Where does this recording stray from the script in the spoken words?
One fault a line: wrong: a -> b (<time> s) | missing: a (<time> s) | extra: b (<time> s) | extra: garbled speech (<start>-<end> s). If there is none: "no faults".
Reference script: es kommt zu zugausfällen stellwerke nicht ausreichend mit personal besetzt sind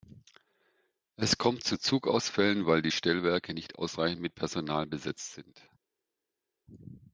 extra: weil die (2.6 s)